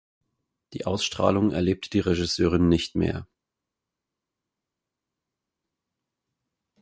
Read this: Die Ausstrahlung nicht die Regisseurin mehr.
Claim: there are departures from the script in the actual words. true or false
true